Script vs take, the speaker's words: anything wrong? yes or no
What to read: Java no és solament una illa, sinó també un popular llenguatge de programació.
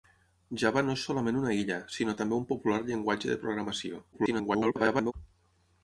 yes